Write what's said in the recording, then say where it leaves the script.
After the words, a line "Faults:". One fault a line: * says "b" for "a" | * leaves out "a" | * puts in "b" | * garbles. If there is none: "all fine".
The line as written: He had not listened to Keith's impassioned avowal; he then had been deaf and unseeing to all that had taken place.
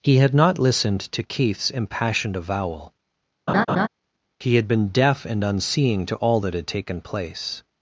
He had not listened to Keith's impassioned avowal; he had been deaf and unseeing to all that had taken place.
Faults:
* leaves out "then"